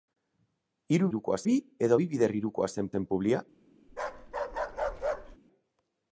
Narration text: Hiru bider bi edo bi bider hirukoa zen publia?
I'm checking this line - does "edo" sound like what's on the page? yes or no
yes